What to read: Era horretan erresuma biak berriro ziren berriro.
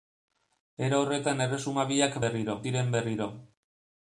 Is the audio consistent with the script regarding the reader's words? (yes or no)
yes